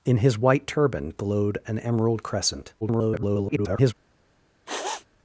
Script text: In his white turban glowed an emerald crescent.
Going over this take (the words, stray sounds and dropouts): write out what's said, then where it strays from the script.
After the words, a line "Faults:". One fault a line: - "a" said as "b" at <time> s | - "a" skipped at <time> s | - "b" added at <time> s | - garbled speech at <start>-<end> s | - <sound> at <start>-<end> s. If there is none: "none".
In his white turban glowed an emerald crescent. [garbled]
Faults:
- garbled speech at 2.8-3.9 s
- sniff at 4.7-5.1 s